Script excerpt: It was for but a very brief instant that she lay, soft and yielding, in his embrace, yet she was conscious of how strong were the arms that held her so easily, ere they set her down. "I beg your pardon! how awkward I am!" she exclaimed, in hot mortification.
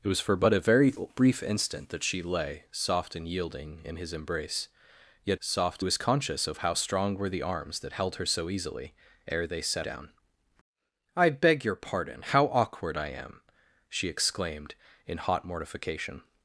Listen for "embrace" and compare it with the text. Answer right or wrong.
right